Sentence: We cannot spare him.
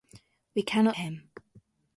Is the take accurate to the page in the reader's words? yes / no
no